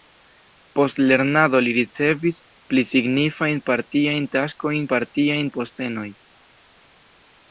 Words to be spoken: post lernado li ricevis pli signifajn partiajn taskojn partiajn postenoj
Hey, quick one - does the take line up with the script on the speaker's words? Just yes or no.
yes